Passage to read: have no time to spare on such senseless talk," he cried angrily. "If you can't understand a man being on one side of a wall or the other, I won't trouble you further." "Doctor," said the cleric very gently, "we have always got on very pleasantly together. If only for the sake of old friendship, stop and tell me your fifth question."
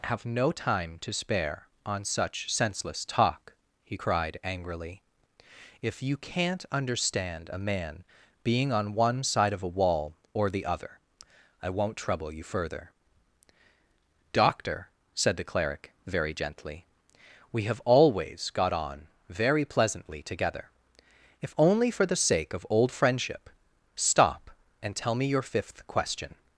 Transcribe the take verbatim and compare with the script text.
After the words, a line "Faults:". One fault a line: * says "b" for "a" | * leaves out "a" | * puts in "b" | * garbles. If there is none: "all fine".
have no time to spare on such senseless talk," he cried angrily. "If you can't understand a man being on one side of a wall or the other, I won't trouble you further." "Doctor," said the cleric very gently, "we have always got on very pleasantly together. If only for the sake of old friendship, stop and tell me your fifth question."
Faults:
all fine